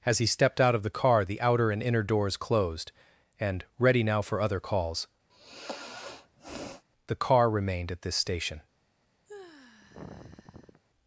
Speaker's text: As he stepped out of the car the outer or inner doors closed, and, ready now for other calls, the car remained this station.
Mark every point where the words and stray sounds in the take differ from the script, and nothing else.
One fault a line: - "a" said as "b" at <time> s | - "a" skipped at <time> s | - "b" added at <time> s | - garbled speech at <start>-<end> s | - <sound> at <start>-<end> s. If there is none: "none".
- "or" said as "and" at 1.7 s
- sigh at 5.3-6.8 s
- "at" added at 7.9 s
- sigh at 9.3-10.8 s